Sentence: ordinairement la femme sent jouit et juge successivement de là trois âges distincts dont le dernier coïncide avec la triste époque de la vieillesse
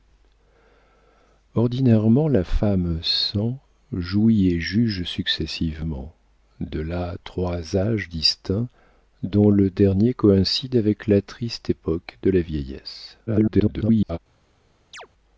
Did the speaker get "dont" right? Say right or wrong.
right